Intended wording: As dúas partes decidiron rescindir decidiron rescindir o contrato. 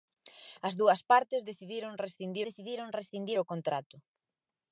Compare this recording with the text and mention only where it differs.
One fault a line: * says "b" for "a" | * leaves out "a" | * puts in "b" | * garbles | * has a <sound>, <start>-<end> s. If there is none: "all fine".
all fine